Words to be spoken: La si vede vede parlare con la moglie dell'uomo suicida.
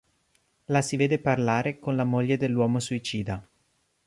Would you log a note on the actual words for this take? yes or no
yes